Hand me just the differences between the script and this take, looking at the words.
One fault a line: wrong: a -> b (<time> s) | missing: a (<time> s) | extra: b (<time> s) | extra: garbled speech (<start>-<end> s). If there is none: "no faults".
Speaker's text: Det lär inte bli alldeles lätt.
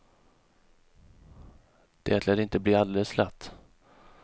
no faults